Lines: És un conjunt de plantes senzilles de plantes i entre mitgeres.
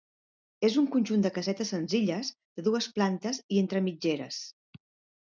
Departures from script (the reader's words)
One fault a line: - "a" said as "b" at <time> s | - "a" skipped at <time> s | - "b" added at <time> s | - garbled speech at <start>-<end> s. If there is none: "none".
- "plantes" said as "casetes" at 1.4 s
- "dues" added at 2.7 s